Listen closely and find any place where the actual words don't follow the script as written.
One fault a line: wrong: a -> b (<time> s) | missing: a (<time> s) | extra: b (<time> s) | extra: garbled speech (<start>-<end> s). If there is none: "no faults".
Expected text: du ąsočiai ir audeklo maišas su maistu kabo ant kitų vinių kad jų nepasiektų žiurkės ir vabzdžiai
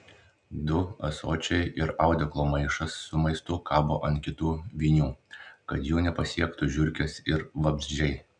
no faults